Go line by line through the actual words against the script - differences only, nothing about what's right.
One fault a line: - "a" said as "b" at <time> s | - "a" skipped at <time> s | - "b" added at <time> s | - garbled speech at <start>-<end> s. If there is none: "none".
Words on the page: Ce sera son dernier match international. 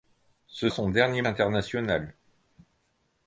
- "sera" skipped at 0.7 s
- "match" skipped at 1.2 s